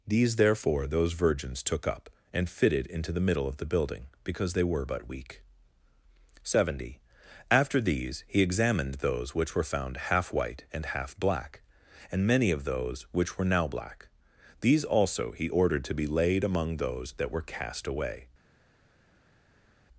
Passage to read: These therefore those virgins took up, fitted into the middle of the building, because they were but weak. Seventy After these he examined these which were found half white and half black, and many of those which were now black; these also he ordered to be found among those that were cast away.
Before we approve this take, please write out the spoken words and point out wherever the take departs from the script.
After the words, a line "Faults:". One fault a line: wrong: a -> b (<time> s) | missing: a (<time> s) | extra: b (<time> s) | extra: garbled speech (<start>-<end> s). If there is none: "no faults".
These therefore those virgins took up, and fitted into the middle of the building, because they were but weak. Seventy After these he examined those which were found half white and half black, and many of those which were now black; these also he ordered to be laid among those that were cast away.
Faults:
extra: and (2.3 s)
wrong: these -> those (8.9 s)
wrong: found -> laid (16.1 s)